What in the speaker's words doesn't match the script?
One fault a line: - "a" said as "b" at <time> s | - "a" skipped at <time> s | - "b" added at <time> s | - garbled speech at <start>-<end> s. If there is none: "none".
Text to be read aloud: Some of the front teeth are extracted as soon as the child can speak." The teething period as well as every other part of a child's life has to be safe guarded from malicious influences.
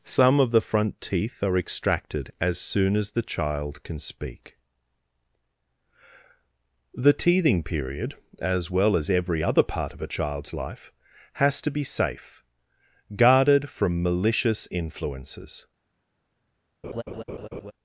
none